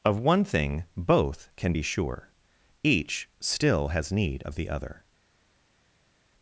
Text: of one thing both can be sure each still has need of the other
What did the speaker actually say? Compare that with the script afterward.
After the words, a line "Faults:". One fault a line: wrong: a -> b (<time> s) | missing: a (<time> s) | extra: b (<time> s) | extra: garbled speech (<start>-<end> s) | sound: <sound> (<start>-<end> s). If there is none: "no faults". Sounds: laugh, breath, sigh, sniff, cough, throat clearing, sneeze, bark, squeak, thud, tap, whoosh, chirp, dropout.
of one thing both can be sure each still has need of the other
Faults:
no faults